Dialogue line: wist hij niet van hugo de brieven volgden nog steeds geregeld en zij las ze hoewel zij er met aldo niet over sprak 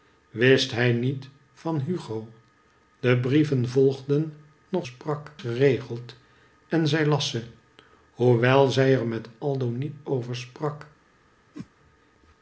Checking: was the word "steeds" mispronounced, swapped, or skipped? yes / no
yes